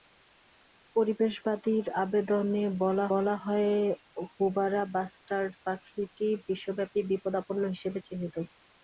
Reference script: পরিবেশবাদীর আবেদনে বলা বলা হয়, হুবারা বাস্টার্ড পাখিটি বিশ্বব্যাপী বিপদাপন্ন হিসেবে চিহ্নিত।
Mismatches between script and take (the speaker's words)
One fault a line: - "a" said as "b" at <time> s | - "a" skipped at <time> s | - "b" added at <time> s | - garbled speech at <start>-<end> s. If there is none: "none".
none